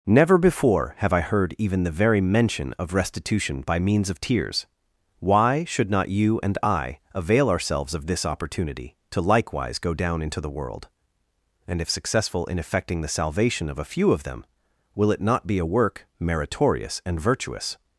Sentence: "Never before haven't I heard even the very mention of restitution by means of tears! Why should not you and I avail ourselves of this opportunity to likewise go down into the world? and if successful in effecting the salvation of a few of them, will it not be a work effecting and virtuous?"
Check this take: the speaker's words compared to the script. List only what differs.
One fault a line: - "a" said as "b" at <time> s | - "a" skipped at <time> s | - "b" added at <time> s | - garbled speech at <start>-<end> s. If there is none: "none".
- "haven't" said as "have" at 1.0 s
- "effecting" said as "meritorious" at 16.2 s